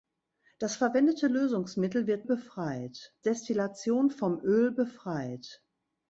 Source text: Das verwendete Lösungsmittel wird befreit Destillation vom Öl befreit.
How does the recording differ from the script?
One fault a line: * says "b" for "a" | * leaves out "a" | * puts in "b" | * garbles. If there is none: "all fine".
all fine